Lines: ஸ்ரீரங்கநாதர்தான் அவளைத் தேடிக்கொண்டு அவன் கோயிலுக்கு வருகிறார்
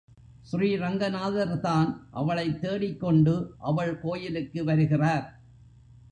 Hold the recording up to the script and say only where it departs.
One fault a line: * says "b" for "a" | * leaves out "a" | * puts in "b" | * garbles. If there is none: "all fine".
* says "அவள்" for "அவன்"